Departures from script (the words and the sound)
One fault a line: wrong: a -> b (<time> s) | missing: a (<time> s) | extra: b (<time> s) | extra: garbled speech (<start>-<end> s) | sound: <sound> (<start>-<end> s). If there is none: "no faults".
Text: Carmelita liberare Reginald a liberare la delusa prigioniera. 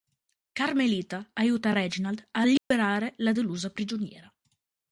wrong: liberare -> aiuta (1.3 s)
sound: dropout (2.6-2.7 s)